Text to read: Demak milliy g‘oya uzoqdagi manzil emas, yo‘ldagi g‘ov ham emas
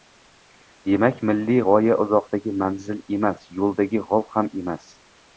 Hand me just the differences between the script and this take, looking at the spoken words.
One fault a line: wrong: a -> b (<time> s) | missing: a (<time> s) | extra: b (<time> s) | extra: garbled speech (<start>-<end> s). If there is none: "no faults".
no faults